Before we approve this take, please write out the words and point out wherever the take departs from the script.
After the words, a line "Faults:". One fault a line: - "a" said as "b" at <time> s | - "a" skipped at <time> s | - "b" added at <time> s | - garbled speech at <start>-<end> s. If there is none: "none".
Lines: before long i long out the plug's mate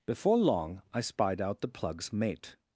before long i spied out the plug's mate
Faults:
- "long" said as "spied" at 1.0 s